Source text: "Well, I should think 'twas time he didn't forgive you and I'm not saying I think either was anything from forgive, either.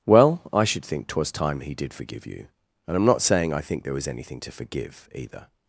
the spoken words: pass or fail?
fail